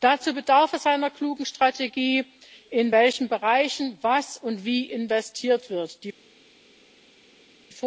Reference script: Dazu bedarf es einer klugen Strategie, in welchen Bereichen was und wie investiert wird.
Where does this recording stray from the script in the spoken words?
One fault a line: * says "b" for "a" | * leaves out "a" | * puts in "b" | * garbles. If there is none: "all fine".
all fine